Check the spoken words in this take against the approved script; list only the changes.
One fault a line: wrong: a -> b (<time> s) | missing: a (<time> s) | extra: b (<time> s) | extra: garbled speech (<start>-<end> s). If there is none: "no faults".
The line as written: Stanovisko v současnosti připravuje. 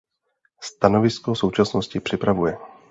no faults